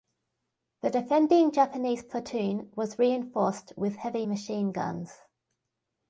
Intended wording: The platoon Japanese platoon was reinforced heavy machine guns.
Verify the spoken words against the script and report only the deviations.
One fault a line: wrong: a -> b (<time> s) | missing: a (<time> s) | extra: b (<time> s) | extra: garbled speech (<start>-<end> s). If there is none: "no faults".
wrong: platoon -> defending (0.9 s)
extra: with (3.8 s)